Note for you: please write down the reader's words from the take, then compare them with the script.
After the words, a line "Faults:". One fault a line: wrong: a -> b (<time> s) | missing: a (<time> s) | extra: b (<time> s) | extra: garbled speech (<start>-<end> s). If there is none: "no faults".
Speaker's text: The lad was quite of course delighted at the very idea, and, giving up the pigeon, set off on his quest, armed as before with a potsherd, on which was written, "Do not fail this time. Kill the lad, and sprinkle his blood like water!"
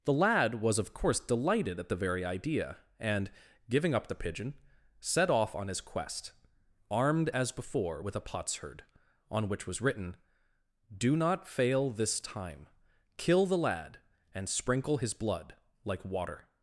The lad was of course delighted at the very idea, and, giving up the pigeon, set off on his quest, armed as before with a potsherd, on which was written, "Do not fail this time. Kill the lad, and sprinkle his blood like water!"
Faults:
missing: quite (0.8 s)